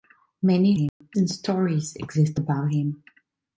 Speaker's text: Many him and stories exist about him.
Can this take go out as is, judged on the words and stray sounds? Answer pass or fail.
fail